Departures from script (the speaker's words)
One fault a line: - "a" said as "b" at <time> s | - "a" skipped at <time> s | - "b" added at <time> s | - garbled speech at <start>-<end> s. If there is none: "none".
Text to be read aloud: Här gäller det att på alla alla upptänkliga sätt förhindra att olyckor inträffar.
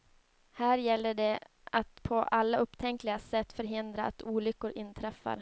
- "alla" skipped at 2.6 s